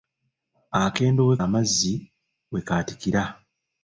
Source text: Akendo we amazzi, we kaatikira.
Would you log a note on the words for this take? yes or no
no